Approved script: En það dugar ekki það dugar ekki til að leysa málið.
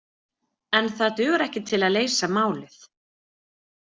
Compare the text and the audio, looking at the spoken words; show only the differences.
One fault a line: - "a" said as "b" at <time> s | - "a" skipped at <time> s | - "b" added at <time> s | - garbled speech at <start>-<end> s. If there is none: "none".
- "það dugar ekki" skipped at 1.6 s